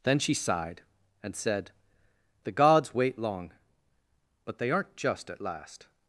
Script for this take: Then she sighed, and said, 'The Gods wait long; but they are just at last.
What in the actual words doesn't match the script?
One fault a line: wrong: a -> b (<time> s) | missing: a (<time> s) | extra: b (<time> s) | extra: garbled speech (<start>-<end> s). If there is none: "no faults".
wrong: are -> aren't (4.7 s)